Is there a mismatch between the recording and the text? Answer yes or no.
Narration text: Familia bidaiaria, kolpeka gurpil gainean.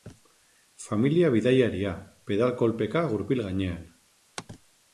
yes